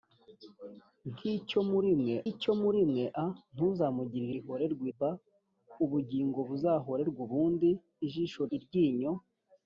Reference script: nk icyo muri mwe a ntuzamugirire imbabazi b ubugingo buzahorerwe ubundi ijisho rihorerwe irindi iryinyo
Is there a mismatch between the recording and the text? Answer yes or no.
yes